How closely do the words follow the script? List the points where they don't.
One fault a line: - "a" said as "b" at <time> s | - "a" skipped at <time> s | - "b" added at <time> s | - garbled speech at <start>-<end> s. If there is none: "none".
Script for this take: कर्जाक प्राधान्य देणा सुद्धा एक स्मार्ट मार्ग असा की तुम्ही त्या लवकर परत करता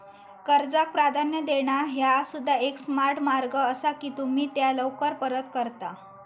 - "ह्या" added at 1.9 s